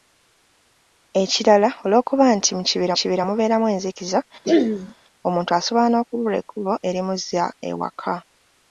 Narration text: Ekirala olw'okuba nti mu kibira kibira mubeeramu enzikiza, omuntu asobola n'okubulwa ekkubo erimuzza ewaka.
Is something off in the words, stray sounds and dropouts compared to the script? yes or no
yes